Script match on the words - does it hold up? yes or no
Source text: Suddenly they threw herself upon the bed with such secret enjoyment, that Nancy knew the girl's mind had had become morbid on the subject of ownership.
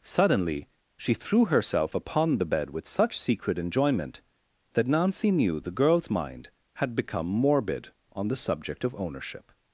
no